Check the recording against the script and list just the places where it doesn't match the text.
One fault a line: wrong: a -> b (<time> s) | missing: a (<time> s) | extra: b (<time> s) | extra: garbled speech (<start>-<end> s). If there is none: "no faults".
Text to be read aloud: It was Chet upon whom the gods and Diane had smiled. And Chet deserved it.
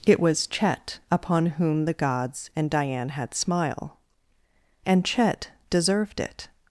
wrong: smiled -> smile (3.3 s)